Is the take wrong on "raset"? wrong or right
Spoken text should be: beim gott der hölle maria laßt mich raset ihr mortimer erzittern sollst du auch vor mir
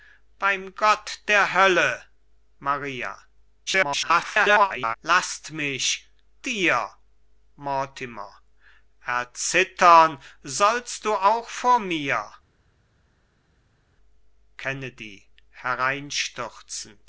wrong